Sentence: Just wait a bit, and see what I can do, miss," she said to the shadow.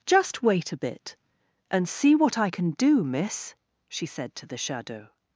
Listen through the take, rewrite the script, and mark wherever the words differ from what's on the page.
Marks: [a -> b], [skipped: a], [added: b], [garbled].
Just wait a bit, and see what I can do, miss," she said to the shadow.